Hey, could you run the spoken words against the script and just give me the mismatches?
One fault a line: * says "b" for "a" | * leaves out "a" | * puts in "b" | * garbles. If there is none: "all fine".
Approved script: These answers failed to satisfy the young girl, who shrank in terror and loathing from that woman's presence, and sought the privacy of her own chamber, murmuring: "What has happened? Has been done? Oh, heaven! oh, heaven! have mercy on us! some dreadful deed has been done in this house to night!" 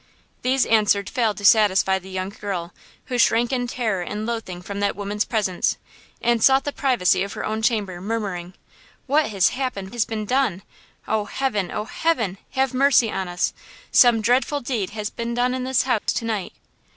all fine